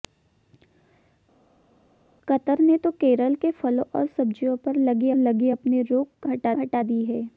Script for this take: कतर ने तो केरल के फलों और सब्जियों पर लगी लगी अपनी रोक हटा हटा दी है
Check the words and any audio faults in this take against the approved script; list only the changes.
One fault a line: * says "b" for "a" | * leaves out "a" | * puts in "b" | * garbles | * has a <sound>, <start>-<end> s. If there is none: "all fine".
all fine